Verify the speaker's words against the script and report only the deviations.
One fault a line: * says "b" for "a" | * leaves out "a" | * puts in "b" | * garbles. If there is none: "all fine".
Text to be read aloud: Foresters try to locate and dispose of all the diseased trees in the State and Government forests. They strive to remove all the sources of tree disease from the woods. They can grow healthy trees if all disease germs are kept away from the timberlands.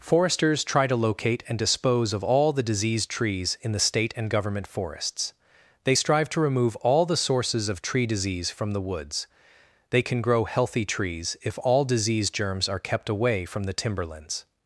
all fine